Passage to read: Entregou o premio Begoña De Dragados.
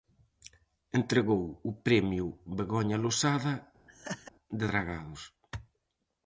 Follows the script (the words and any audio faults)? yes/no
no